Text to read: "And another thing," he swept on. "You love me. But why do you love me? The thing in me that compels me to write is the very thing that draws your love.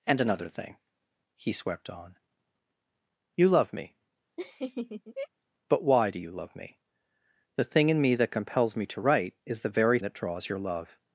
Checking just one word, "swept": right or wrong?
right